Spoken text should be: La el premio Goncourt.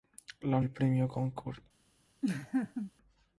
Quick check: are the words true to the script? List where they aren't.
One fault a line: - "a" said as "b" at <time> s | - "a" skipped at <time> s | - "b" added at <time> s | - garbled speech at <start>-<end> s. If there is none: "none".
none